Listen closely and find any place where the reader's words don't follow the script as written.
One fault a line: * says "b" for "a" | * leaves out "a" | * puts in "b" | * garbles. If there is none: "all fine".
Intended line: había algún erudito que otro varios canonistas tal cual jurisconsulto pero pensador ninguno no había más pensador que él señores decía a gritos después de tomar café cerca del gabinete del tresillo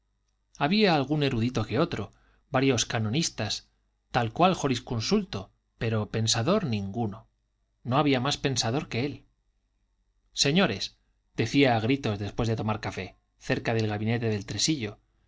all fine